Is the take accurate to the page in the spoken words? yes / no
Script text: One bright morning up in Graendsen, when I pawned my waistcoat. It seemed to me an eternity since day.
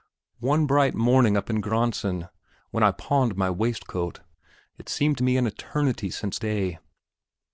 yes